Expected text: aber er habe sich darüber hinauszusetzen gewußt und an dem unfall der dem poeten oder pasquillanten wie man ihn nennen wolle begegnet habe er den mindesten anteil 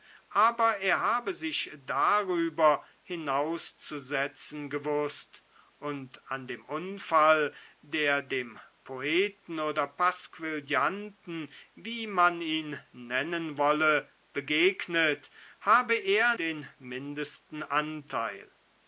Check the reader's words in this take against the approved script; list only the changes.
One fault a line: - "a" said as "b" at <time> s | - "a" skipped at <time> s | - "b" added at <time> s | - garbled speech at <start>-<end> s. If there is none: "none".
none